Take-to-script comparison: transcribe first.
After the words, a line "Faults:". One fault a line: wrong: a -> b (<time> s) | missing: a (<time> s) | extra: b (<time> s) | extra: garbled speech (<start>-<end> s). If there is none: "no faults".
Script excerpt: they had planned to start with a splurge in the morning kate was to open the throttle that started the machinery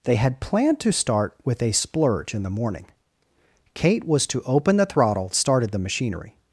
they had planned to start with a splurge in the morning kate was to open the throttle started the machinery
Faults:
missing: that (5.3 s)